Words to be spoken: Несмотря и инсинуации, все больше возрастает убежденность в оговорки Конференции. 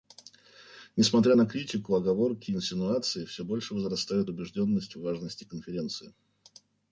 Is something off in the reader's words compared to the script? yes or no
yes